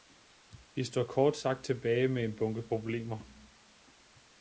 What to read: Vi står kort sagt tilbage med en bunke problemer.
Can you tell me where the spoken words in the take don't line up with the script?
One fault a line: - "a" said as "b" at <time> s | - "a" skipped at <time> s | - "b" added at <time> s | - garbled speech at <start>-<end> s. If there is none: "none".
none